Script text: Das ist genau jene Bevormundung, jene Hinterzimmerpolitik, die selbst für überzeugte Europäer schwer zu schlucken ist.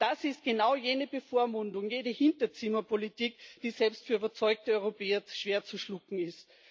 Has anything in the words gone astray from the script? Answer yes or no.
no